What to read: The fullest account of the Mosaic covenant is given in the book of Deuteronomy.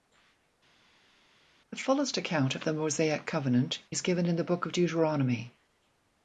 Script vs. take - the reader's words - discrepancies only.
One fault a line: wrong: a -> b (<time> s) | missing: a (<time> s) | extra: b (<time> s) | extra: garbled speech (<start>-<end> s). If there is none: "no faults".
no faults